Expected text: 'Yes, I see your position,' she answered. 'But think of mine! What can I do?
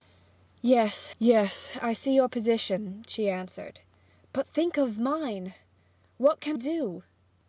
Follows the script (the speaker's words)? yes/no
no